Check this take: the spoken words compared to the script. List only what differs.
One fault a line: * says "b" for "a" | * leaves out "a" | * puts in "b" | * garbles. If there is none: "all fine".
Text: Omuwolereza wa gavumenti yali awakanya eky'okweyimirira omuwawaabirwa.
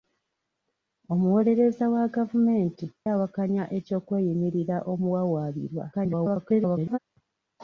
* leaves out "yali"
* garbles